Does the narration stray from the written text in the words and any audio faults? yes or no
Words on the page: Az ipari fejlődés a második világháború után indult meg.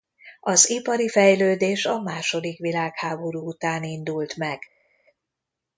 no